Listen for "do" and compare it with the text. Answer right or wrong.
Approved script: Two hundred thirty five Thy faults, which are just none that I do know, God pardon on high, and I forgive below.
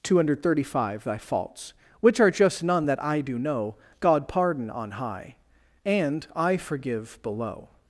right